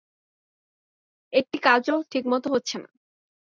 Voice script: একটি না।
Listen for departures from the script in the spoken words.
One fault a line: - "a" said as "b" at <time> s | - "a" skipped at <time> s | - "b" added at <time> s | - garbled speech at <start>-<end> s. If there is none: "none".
- "কাজও ঠিকমতো হচ্ছে" added at 1.6 s